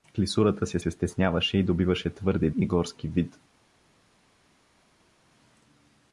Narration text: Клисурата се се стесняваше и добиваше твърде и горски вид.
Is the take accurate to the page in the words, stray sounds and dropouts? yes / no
yes